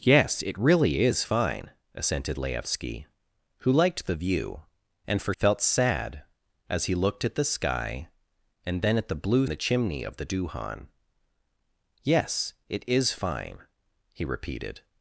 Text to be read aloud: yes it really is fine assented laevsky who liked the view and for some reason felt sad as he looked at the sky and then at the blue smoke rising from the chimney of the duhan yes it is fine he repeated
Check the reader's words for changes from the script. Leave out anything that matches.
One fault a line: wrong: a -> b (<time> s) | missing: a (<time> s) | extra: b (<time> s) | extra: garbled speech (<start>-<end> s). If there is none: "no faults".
missing: some reason (5.3 s)
missing: smoke rising from (9.5 s)